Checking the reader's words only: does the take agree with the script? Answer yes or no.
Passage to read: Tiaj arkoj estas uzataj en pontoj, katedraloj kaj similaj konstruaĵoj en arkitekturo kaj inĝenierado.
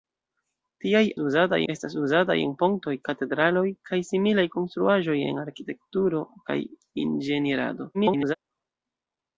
no